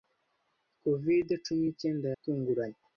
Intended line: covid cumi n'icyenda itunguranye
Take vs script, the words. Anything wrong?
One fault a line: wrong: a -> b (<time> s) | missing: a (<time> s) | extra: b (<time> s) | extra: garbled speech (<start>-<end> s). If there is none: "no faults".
no faults